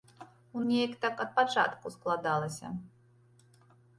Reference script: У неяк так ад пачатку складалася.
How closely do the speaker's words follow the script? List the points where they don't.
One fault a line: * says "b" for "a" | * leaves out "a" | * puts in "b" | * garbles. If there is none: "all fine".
all fine